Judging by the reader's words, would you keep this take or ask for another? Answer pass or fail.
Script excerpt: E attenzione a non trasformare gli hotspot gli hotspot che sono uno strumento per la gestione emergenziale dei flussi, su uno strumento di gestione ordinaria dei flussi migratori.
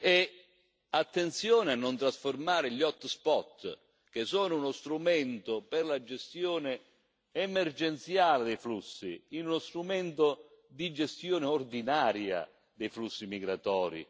fail